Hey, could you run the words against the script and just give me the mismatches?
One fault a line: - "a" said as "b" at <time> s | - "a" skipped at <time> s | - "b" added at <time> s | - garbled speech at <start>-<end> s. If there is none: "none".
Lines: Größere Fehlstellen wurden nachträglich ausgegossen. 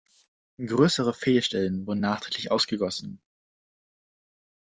none